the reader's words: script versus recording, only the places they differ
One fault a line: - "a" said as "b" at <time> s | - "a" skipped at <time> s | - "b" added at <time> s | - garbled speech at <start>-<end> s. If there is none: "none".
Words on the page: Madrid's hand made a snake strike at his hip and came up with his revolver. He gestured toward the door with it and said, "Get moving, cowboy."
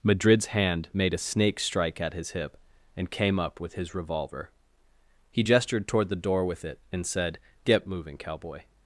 none